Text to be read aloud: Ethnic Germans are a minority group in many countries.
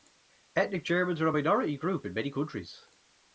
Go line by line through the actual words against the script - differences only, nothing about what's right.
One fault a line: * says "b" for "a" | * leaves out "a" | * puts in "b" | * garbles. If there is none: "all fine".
all fine